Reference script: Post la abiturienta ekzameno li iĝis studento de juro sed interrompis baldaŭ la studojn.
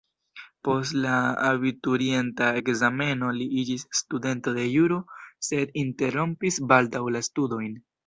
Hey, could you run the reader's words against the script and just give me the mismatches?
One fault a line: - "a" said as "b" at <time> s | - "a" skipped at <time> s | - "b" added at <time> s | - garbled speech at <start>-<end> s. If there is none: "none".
none